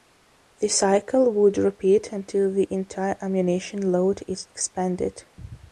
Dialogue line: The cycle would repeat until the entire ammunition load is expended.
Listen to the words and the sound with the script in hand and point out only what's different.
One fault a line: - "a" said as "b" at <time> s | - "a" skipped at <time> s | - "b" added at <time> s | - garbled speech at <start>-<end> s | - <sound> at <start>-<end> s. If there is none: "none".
none